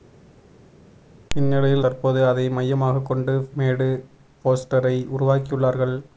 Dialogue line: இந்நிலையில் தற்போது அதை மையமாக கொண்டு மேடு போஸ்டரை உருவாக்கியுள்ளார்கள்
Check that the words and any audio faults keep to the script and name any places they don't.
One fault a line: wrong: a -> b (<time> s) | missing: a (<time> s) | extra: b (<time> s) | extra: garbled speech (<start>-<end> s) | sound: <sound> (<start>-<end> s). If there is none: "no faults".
no faults